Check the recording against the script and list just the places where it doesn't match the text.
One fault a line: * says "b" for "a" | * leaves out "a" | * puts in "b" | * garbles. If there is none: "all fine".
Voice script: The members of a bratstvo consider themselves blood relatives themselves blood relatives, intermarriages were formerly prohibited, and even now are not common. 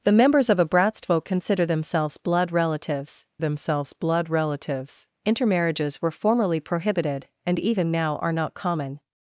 all fine